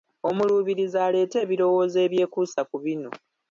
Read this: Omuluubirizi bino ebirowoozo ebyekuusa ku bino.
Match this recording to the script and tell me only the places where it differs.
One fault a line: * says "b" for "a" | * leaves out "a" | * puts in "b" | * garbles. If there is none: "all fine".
* says "aleete" for "bino"